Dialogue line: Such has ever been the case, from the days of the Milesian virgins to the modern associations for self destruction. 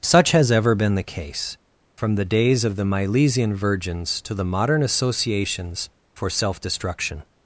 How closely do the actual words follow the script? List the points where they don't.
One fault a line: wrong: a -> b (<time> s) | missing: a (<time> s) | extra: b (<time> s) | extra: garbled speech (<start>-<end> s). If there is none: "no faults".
no faults